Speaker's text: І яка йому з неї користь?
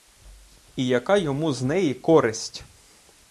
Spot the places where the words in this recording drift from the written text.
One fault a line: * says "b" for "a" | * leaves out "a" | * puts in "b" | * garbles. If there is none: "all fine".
all fine